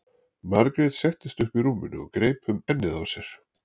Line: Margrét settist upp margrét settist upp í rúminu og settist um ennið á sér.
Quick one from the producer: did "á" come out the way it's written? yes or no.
yes